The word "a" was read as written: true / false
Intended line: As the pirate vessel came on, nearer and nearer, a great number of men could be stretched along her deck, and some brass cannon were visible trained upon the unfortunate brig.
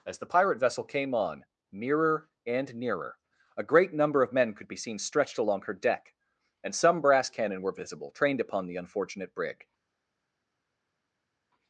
true